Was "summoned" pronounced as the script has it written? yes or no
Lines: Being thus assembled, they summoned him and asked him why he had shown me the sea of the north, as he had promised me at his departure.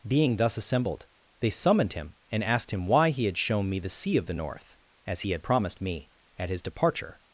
yes